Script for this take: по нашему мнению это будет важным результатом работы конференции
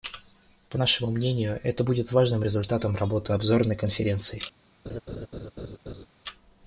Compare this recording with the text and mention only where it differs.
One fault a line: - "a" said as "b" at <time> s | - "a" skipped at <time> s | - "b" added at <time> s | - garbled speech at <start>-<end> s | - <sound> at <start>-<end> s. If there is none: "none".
- "обзорной" added at 3.3 s
- laugh at 4.9-6.1 s